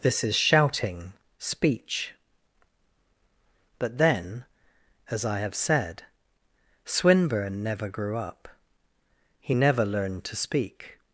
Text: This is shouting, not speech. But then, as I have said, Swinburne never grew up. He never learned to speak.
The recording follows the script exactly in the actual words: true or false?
false